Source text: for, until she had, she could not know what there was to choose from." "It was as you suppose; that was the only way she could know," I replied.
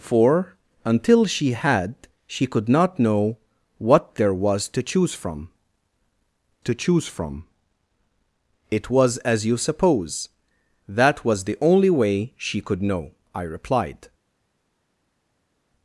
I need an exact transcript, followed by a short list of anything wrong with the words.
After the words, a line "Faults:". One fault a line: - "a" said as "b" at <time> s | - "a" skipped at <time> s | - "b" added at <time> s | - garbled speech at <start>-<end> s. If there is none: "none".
for, until she had, she could not know what there was to choose from to choose from." "It was as you suppose; that was the only way she could know," I replied.
Faults:
- "to choose from" added at 6.6 s